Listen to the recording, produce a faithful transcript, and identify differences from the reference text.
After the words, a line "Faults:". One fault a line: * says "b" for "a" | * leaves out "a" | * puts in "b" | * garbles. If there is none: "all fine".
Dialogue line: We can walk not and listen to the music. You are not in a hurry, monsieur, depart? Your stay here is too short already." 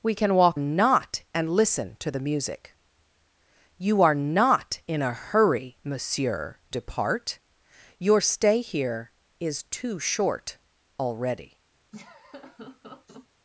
We can walk not and listen to the music. You are not in a hurry, monsieur, depart? Your stay here is too short already."
Faults:
all fine